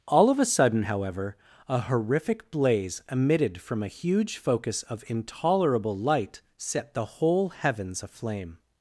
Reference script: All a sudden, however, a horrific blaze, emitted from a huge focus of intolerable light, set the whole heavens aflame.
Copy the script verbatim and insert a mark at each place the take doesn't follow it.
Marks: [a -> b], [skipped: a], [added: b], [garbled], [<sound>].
All [added: of] a sudden, however, a horrific blaze, emitted from a huge focus of intolerable light, set the whole heavens aflame.